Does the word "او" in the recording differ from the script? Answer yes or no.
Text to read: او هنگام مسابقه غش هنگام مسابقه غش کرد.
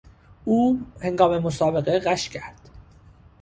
no